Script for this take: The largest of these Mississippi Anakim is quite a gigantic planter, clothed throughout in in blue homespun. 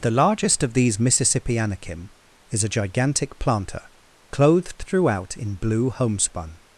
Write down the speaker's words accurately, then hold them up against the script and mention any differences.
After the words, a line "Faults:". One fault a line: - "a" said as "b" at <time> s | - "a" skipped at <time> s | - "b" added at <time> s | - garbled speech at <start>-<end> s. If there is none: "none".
The largest of these Mississippi Anakim is a gigantic planter, clothed throughout in blue homespun.
Faults:
- "quite" skipped at 2.6 s
- "in" skipped at 5.6 s